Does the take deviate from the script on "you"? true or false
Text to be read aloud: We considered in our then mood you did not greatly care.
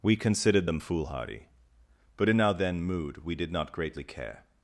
true